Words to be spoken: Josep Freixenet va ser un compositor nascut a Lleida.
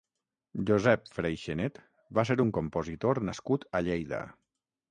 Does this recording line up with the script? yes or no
yes